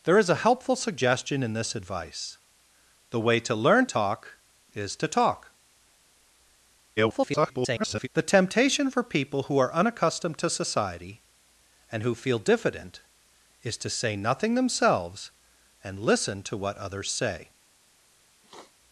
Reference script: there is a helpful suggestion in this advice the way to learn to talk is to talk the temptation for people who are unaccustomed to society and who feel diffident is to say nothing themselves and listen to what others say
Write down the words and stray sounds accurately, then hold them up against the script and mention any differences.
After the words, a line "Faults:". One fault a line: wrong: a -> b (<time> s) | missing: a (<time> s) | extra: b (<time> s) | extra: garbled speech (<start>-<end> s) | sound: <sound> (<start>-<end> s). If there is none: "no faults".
there is a helpful suggestion in this advice the way to learn talk is to talk [garbled] the temptation for people who are unaccustomed to society and who feel diffident is to say nothing themselves and listen to what others say
Faults:
missing: to (3.9 s)
extra: garbled speech (7.0-8.1 s)
sound: sniff (18.4-18.7 s)